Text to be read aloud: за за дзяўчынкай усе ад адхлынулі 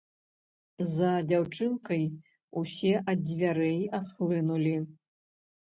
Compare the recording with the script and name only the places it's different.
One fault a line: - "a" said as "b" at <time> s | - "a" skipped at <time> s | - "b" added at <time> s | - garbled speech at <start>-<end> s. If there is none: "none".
- "за" skipped at 1.1 s
- "дзвярэй" added at 3.3 s